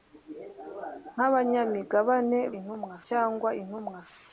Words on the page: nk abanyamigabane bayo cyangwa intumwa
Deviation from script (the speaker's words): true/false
true